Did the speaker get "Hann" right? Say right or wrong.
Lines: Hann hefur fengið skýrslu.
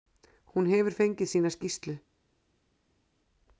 wrong